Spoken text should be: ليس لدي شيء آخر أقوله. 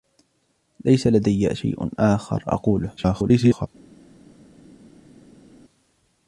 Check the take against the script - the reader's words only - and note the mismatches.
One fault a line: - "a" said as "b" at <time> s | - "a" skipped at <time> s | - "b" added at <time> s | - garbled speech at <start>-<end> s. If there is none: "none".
- garbled speech at 3.0-3.7 s